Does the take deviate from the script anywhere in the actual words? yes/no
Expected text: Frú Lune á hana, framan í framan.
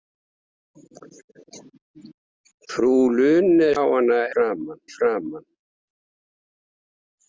no